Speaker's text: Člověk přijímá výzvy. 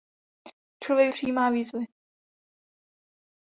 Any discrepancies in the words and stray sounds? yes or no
no